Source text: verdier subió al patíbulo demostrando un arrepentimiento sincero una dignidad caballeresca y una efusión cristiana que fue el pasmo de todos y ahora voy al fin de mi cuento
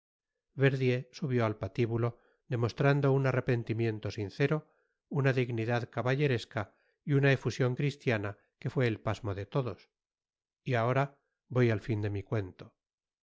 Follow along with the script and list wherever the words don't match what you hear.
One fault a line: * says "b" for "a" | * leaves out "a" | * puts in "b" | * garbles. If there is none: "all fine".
all fine